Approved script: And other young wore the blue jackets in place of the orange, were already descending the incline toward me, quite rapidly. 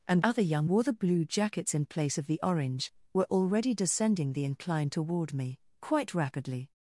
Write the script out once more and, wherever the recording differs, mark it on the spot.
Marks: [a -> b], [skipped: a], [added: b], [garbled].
And other young wore the blue jackets in place of the orange, were already descending the incline toward me, quite rapidly.